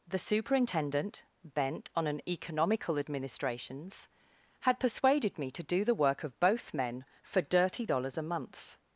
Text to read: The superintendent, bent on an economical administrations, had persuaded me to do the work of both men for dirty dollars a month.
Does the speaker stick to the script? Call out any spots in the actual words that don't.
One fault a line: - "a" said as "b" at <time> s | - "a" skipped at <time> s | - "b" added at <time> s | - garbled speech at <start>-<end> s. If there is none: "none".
none